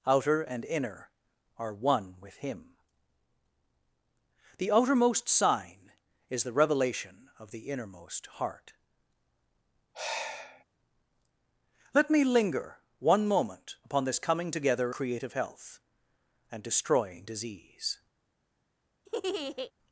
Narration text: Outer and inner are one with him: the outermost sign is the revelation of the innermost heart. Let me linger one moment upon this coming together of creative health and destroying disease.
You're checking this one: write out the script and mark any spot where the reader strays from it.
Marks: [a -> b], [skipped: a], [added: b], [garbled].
Outer and inner are one with him: the outermost sign is the revelation of the innermost heart. Let me linger one moment upon this coming together [skipped: of] creative health and destroying disease.